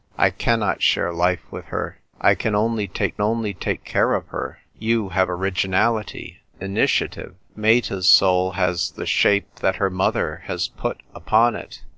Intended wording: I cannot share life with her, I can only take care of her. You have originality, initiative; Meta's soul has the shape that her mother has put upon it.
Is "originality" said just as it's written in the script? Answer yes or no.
yes